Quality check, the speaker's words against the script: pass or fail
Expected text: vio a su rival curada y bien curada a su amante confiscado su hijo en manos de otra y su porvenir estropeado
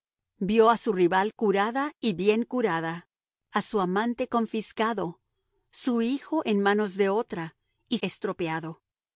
fail